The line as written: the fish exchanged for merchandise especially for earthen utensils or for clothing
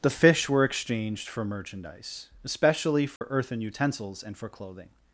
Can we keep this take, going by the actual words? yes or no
no